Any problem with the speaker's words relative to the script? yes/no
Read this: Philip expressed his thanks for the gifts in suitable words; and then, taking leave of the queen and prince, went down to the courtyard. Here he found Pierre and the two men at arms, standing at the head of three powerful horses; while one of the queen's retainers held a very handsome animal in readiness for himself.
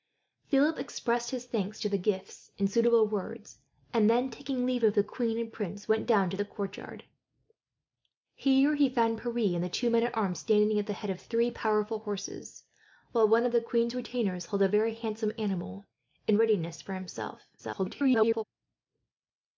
yes